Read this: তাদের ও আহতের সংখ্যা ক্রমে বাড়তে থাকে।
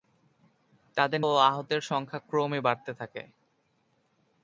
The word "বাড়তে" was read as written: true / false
true